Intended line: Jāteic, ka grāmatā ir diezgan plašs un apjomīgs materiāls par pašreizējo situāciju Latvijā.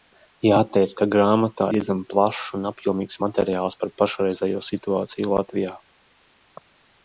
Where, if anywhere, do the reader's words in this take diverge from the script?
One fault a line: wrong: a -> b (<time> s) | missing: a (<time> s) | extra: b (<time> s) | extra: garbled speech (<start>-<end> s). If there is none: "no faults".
missing: ir (1.7 s)